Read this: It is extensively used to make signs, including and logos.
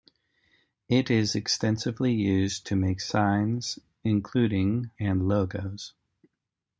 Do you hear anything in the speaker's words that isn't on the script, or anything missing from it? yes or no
no